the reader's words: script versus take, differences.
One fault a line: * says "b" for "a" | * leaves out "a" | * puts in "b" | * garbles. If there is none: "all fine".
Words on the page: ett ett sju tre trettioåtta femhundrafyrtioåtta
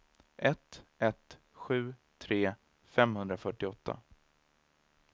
* leaves out "trettioåtta"